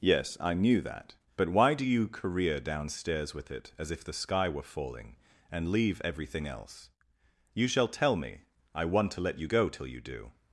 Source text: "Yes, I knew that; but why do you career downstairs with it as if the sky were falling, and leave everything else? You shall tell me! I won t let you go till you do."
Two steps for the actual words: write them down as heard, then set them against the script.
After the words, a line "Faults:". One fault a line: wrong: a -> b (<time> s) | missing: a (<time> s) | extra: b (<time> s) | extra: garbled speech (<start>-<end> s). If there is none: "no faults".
"Yes, I knew that; but why do you career downstairs with it as if the sky were falling, and leave everything else? You shall tell me! I want to let you go till you do."
Faults:
wrong: won t -> want to (8.8 s)